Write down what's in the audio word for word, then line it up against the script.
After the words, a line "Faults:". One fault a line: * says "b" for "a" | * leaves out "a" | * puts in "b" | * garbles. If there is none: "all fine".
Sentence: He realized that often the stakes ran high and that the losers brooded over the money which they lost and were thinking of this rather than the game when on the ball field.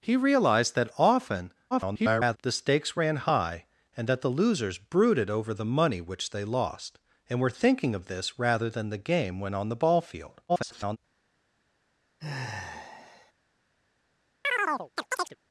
He realized that often [garbled] the stakes ran high and that the losers brooded over the money which they lost and were thinking of this rather than the game when on the ball field. [garbled]
Faults:
* garbles
* garbles